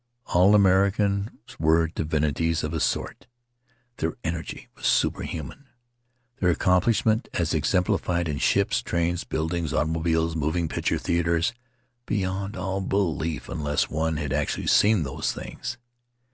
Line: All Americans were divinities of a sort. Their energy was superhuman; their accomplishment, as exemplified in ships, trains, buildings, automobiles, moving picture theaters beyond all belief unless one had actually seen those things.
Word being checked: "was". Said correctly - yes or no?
yes